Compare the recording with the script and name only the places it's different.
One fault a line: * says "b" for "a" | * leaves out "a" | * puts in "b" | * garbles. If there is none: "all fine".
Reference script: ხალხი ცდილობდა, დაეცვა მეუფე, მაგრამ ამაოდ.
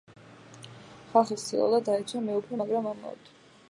all fine